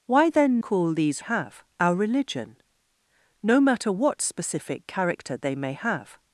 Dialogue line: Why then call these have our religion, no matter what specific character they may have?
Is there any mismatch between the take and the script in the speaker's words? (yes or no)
no